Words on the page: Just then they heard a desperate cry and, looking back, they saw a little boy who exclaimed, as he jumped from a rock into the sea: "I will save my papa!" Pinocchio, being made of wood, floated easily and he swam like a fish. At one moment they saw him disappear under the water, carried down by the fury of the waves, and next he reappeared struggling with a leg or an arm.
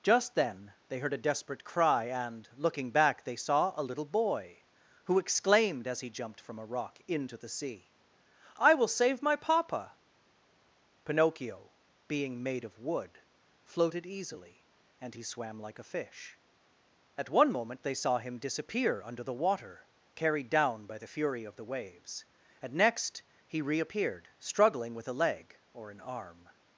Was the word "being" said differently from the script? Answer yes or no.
no